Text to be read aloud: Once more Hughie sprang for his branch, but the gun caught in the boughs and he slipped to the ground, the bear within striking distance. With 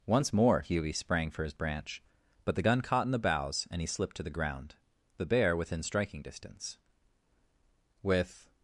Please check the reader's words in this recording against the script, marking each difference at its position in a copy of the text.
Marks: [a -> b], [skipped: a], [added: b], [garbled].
Once more Hughie sprang for his branch, but the gun caught in the boughs and he slipped to the ground, the bear within striking distance. With